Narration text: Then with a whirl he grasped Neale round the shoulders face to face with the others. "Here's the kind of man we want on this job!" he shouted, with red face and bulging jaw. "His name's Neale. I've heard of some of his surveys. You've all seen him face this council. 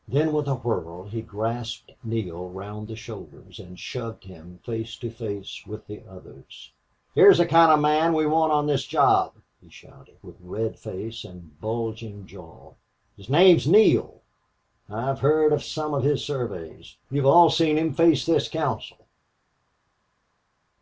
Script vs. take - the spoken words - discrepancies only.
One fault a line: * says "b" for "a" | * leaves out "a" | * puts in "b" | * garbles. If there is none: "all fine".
* puts in "and shoved him"